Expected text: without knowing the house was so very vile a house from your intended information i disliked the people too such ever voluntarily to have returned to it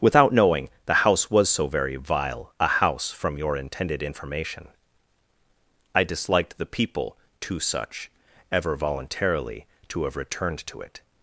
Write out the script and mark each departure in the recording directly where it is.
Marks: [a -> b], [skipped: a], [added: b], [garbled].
without knowing the house was so very vile a house from your intended information i disliked the people too such ever voluntarily to have returned to it